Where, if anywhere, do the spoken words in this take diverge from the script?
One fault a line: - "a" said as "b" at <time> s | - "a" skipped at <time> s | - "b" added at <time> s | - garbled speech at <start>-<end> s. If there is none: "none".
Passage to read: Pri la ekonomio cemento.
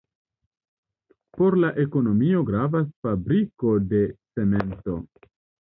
- "Pri" said as "Por" at 1.4 s
- "gravas fabriko de" added at 2.4 s